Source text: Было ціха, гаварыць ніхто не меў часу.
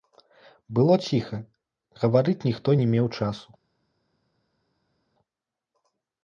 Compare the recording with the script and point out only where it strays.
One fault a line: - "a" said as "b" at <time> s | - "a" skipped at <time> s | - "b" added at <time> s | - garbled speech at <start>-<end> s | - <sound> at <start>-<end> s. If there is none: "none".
none